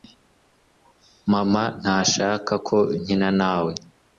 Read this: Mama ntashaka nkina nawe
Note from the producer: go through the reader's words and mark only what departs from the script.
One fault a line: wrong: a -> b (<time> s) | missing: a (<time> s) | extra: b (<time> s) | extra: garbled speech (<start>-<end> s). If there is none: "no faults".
extra: ko (2.7 s)